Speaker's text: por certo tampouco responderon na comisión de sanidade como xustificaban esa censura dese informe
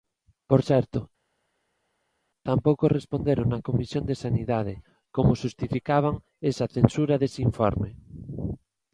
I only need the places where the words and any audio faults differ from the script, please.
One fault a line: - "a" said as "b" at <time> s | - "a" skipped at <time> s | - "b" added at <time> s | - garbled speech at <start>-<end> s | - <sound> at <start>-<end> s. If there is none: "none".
none